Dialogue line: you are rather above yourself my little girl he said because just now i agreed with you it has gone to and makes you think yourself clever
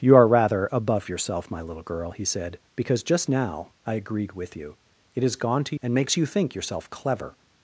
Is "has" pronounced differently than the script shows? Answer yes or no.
no